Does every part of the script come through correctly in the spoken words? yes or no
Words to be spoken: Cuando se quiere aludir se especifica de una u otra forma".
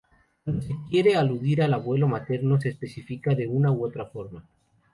no